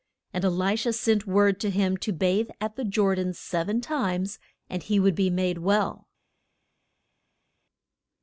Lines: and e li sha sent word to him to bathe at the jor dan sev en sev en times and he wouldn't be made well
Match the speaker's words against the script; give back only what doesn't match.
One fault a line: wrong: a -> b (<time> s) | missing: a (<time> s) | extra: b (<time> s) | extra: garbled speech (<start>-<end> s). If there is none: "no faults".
missing: sev en (3.8 s)
wrong: wouldn't -> would (5.0 s)